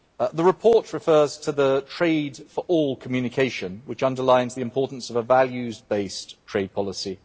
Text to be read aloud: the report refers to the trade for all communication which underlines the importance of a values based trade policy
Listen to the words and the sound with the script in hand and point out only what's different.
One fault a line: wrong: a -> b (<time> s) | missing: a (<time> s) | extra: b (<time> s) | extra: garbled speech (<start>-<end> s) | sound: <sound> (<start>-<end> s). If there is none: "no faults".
no faults